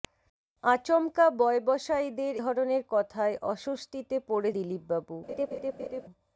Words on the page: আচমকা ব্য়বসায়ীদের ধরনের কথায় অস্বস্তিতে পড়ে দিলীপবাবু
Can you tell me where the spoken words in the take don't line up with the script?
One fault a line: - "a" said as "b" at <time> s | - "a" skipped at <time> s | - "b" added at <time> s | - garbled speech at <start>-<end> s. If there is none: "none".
none